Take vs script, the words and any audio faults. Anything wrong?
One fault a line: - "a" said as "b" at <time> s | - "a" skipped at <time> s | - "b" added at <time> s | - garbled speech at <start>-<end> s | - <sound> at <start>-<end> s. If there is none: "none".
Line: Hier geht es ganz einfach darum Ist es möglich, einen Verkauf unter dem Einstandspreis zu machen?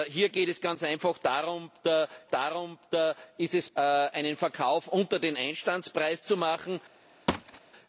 - "darum" added at 2.3 s
- "möglich" skipped at 3.7 s
- thud at 7.3-7.6 s